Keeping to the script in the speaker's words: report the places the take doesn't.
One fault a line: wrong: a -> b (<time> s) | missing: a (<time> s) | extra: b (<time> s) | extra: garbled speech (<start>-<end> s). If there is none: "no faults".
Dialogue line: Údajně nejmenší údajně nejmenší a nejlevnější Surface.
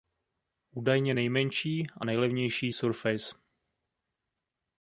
missing: údajně nejmenší (1.9 s)